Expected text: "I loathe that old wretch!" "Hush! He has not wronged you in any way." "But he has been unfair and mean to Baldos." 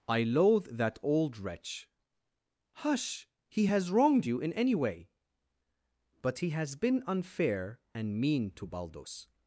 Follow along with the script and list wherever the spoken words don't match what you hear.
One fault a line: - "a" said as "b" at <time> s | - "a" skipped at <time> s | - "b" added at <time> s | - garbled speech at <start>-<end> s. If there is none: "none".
- "not" skipped at 3.9 s